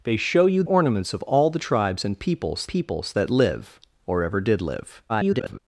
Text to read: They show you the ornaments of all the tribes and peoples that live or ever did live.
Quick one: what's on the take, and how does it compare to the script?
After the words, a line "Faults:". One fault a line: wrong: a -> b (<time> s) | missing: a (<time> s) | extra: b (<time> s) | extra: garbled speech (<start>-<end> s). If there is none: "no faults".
They show you ornaments of all the tribes and peoples peoples that live or ever did live. [garbled]
Faults:
missing: the (0.6 s)
extra: peoples (2.7 s)
extra: garbled speech (5.1-5.6 s)